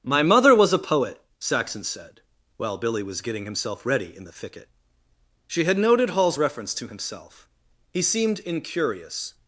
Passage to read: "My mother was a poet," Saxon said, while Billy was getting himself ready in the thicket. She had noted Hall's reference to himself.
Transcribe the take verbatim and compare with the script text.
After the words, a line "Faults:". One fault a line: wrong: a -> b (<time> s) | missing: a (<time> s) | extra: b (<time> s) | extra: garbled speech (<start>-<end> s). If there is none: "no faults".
"My mother was a poet," Saxon said, while Billy was getting himself ready in the thicket. She had noted Hall's reference to himself. He seemed incurious
Faults:
extra: He seemed incurious (7.9 s)